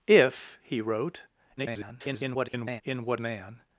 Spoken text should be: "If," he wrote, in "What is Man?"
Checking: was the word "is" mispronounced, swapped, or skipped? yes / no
yes